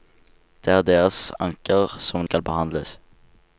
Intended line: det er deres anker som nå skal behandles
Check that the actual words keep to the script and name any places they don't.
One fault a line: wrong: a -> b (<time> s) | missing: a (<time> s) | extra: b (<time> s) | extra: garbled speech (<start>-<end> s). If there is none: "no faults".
missing: nå (2.2 s)